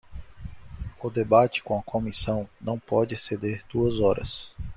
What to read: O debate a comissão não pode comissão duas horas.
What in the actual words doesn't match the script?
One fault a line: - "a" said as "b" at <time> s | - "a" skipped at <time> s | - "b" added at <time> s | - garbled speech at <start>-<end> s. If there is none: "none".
- "com" added at 1.6 s
- "comissão" said as "exceder" at 3.1 s